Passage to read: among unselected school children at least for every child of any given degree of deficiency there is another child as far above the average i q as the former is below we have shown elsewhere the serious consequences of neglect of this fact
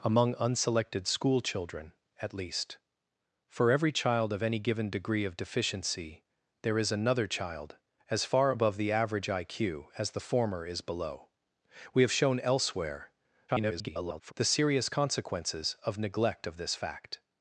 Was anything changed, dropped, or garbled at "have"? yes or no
no